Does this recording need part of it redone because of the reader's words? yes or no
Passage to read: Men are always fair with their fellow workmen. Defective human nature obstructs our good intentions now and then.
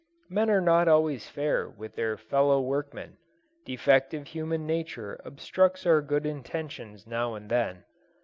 yes